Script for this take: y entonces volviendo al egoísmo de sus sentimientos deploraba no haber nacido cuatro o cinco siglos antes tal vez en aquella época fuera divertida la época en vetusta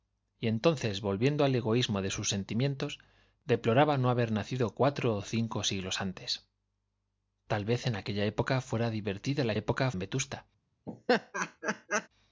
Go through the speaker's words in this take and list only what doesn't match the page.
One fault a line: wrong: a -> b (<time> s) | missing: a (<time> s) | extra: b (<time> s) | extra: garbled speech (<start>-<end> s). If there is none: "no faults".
no faults